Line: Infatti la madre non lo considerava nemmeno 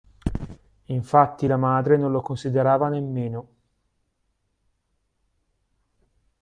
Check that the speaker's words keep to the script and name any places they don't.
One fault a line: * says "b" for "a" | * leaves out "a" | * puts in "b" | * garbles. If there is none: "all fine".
all fine